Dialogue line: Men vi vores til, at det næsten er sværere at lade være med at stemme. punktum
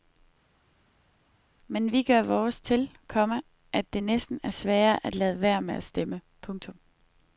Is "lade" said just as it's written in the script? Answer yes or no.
yes